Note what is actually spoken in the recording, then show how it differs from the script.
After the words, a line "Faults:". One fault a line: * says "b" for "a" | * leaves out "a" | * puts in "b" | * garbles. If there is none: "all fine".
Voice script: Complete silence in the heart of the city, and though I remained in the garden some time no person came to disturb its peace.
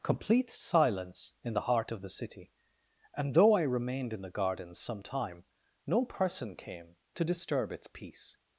Complete silence in the heart of the city, and though I remained in the garden some time no person came to disturb its peace.
Faults:
all fine